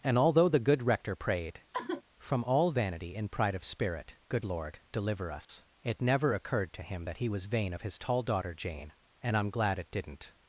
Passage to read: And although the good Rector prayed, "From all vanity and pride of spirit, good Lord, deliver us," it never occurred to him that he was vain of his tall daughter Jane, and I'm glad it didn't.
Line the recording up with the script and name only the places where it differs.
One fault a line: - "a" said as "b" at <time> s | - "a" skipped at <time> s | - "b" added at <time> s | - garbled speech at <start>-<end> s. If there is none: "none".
none